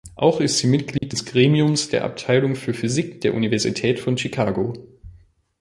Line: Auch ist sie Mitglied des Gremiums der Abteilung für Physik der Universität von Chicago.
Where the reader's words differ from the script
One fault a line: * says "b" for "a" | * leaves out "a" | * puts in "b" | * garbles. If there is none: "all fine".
all fine